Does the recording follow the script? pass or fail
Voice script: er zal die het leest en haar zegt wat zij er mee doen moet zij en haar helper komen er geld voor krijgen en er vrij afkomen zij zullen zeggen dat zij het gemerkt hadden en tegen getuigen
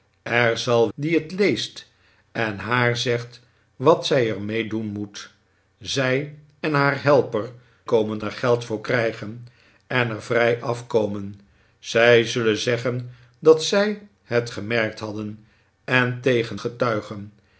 pass